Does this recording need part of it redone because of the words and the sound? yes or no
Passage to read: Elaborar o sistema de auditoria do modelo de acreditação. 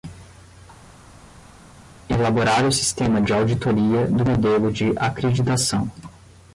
no